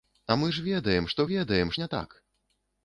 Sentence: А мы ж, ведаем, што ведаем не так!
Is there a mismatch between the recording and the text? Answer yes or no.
no